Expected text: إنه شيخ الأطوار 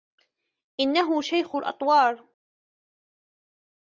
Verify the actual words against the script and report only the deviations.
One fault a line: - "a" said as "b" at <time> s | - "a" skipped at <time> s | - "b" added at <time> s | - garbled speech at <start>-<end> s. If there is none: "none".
none